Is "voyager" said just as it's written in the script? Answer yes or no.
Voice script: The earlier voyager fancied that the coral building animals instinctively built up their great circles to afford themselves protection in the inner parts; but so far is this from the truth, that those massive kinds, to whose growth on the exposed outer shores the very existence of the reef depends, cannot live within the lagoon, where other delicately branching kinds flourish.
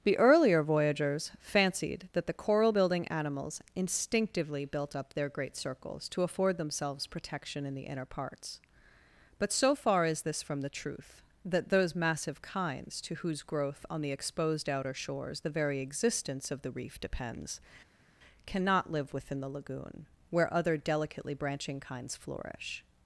no